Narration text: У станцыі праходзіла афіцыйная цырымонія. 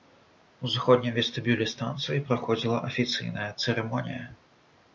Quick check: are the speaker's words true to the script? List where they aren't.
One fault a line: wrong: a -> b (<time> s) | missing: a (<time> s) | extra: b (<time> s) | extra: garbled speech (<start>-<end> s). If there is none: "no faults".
extra: заходнім вестыбюлі (0.8 s)